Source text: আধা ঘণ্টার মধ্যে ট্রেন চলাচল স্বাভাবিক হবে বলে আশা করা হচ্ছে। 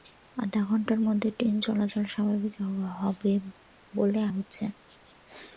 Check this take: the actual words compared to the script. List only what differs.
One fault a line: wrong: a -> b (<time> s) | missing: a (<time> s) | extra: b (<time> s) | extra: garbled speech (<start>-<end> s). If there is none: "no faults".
missing: আশা করা (4.2 s)